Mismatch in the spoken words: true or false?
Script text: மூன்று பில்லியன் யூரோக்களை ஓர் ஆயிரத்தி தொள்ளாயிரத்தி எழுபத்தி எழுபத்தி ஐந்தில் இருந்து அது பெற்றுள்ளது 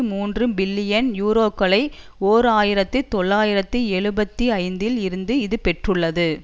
true